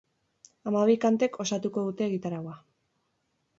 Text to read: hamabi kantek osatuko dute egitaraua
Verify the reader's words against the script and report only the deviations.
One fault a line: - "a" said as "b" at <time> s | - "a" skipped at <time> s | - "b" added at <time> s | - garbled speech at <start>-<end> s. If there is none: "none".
none